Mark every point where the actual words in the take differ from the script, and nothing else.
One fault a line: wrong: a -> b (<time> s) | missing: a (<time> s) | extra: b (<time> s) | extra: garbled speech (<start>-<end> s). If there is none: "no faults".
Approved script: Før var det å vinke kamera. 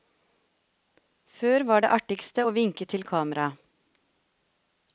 extra: artigste (2.0 s)
extra: til (2.9 s)